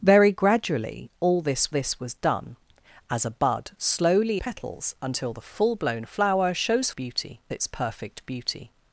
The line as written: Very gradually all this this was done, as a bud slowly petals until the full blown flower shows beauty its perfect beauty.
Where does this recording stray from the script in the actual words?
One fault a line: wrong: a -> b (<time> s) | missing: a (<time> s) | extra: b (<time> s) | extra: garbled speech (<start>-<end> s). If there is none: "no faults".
no faults